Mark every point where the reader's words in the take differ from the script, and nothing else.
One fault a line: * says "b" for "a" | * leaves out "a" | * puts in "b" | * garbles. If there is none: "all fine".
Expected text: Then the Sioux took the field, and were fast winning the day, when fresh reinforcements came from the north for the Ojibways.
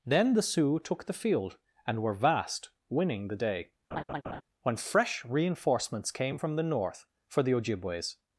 * says "vast" for "fast"